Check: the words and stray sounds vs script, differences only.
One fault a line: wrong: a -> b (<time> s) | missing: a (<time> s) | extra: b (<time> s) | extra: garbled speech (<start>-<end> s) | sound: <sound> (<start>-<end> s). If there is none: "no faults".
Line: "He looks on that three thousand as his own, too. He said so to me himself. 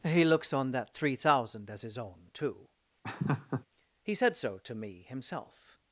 sound: laugh (3.0-3.7 s)